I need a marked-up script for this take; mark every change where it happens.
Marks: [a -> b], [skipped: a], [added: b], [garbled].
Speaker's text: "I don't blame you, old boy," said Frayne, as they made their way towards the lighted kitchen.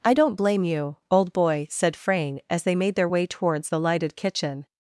"I don't blame you, old boy," said Frayne, as they made their way towards the lighted kitchen.